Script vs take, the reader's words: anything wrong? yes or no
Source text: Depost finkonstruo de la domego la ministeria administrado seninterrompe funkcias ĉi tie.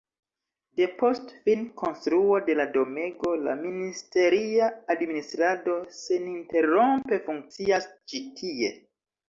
no